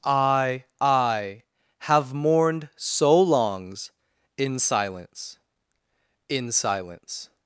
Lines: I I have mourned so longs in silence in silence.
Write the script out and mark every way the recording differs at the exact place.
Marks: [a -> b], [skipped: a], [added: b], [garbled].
I I have mourned so longs in silence in silence.